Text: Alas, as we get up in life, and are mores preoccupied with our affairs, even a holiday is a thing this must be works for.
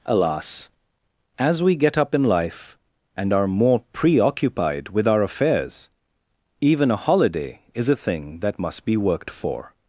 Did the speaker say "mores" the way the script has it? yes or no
no